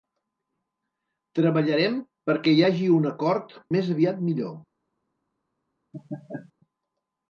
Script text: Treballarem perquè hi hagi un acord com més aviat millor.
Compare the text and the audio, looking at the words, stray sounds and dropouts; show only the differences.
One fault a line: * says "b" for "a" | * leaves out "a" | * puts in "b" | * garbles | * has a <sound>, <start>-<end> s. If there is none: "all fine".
* leaves out "com"
* has a laugh, 5.9-6.5 s